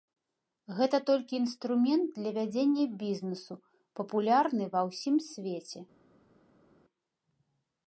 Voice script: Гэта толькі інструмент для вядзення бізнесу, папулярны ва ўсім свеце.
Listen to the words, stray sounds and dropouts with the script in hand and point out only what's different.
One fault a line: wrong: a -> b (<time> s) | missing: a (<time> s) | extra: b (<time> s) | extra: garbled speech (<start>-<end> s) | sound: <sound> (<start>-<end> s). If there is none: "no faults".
no faults